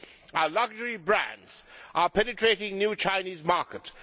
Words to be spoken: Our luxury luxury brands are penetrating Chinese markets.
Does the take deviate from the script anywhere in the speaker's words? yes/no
yes